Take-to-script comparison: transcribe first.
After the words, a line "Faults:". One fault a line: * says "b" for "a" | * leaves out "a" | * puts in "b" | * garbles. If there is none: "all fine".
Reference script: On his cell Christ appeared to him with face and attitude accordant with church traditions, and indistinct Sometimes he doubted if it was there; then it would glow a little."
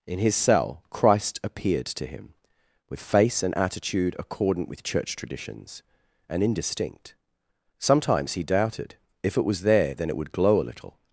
In his cell Christ appeared to him with face and attitude accordant with church traditions, and indistinct Sometimes he doubted if it was there; then it would glow a little."
Faults:
* says "In" for "On"